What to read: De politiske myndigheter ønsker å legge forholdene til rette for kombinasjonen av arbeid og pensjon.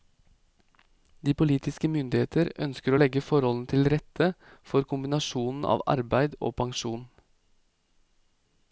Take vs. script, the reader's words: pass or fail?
pass